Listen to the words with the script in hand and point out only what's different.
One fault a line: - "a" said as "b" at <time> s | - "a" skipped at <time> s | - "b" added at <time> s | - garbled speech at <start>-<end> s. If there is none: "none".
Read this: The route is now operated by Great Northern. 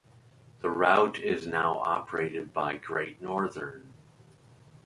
none